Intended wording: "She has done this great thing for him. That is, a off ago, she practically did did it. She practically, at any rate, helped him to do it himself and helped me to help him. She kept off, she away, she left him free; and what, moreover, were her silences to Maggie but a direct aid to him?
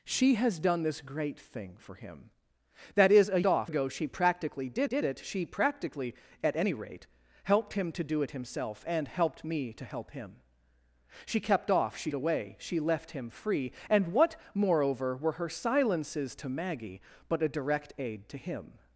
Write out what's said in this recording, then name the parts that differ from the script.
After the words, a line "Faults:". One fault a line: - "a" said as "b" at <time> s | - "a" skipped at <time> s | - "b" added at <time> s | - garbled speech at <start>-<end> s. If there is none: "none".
"She has done this great thing for him. That is, a off ago, she practically did did it. She practically, at any rate, helped him to do it himself and helped me to help him. She kept off, she away, she left him free; and what, moreover, were her silences to Maggie but a direct aid to him?
Faults:
none